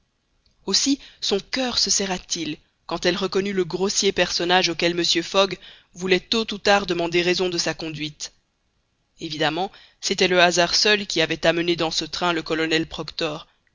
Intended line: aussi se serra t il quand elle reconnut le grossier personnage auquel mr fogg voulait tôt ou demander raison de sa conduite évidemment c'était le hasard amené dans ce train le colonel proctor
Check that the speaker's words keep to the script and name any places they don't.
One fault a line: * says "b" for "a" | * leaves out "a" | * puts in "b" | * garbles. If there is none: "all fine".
* puts in "son coeur"
* puts in "tard"
* puts in "seul qui avait"